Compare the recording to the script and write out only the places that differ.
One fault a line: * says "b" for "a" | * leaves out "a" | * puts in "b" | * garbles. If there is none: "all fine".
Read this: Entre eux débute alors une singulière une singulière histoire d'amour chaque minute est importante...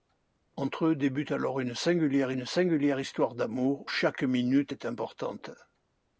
all fine